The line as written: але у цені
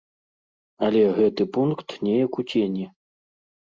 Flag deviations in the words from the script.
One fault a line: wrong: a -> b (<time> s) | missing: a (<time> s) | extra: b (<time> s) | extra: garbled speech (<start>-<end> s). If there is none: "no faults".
extra: гэты пункт неяк (1.2 s)